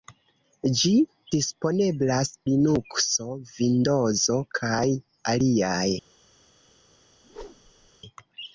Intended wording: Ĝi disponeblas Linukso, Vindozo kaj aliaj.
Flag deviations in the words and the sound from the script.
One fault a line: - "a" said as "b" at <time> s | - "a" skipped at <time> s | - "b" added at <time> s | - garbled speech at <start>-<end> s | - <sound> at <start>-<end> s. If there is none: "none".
- whoosh at 7.2-7.9 s